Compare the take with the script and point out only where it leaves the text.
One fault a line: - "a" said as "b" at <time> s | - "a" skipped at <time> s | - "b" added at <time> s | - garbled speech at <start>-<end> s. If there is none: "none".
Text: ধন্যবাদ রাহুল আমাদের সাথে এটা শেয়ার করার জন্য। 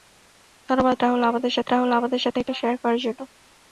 - "রাহুল আমাদের সাথে" added at 1.7 s